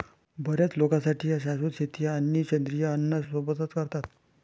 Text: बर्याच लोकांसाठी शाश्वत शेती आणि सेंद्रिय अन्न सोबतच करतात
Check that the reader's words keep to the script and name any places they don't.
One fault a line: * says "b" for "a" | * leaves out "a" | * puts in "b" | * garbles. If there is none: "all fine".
all fine